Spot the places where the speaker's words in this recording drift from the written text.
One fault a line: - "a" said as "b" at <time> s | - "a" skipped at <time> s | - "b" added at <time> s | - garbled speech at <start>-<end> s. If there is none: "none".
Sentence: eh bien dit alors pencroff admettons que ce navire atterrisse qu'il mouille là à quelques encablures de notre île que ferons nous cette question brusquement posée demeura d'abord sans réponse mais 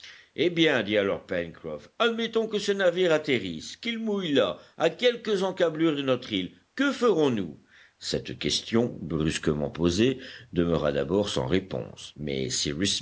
none